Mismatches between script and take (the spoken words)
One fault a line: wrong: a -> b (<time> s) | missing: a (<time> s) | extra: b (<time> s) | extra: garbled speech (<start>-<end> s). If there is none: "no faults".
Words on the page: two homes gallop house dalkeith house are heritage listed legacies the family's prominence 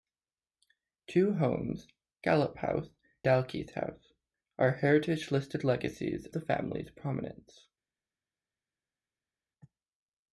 no faults